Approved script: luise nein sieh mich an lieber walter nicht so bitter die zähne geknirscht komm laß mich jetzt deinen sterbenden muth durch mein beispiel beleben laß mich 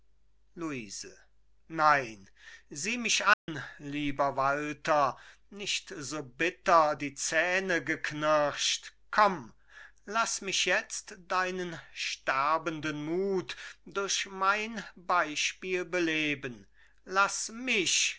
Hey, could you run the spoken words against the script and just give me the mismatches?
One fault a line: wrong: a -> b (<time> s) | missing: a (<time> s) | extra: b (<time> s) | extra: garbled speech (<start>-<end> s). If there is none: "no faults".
no faults